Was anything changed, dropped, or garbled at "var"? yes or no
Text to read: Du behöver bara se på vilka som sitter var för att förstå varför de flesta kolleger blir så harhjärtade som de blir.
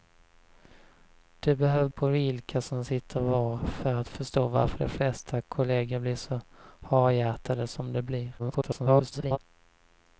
no